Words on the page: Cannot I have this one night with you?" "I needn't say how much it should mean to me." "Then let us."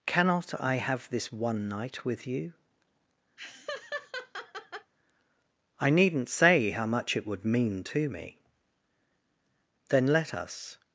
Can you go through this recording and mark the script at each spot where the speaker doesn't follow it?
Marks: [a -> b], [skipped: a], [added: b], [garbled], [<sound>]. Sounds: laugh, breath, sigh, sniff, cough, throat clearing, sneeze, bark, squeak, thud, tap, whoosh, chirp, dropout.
Cannot I have this one night with you?" [laugh] "I needn't say how much it [should -> would] mean to me." "Then let us."